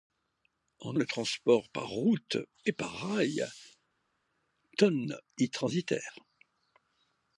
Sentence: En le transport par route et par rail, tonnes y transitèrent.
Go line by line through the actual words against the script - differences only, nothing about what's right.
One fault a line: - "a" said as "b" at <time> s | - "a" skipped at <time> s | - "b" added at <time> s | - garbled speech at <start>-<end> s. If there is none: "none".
none